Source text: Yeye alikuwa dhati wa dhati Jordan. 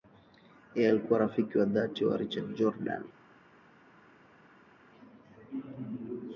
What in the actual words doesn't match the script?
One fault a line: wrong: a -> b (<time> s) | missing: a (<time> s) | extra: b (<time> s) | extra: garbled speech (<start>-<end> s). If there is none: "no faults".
extra: rafiki wa (1.2 s)
wrong: dhati -> Richard (2.2 s)